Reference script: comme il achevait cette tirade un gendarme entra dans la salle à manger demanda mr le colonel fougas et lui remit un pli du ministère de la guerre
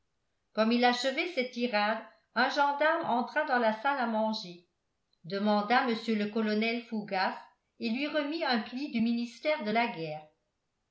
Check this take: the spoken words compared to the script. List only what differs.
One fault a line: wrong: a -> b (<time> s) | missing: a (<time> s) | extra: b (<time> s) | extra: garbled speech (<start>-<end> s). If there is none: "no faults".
no faults